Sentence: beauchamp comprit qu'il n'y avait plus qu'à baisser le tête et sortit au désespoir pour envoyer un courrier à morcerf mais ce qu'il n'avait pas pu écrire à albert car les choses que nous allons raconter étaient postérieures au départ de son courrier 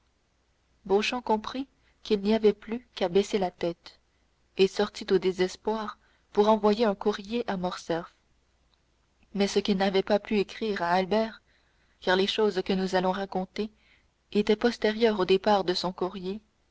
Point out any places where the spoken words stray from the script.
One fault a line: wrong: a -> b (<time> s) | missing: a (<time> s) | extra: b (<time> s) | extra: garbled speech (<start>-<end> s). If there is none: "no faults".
wrong: le -> la (3.4 s)